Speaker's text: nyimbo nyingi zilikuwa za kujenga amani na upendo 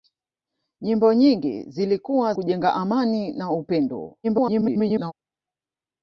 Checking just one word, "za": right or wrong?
wrong